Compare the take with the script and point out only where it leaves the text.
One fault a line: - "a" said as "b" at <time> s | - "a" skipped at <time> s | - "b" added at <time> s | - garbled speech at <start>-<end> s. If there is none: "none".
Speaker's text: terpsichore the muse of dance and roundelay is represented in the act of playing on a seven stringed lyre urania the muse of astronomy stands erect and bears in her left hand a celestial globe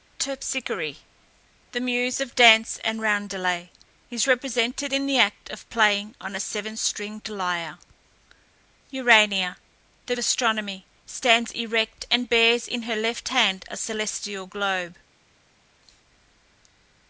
- "muse" skipped at 10.1 s